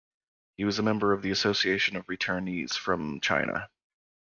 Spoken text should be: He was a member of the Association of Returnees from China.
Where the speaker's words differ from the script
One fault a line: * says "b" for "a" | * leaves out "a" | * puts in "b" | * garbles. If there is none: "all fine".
all fine